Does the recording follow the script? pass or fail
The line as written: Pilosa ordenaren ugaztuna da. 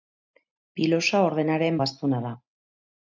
pass